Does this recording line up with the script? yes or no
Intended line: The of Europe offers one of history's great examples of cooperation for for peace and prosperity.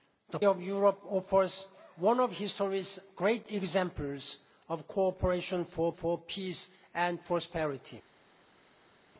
yes